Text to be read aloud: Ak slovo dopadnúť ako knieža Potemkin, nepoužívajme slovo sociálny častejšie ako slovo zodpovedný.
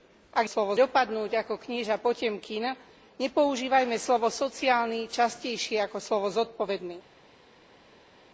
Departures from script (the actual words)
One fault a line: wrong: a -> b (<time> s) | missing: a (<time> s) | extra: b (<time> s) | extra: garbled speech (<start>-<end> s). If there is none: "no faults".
no faults